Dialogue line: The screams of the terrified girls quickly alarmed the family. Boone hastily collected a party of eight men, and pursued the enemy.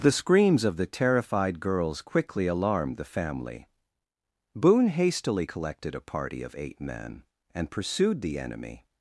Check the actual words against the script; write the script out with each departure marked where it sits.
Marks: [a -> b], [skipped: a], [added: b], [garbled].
The screams of the terrified girls quickly alarmed the family. Boone hastily collected a party of eight men, and pursued the enemy.